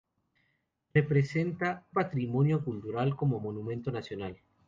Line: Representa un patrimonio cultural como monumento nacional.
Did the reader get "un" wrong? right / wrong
wrong